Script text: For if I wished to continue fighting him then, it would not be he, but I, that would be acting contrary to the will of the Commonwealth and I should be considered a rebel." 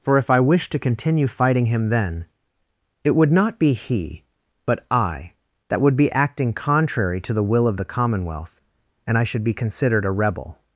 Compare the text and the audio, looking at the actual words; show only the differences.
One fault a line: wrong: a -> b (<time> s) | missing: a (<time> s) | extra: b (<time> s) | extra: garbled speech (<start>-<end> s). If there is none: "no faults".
no faults